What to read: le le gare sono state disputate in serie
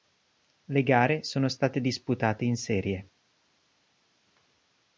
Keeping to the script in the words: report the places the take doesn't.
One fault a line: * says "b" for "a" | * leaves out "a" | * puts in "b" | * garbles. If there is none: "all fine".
* leaves out "le"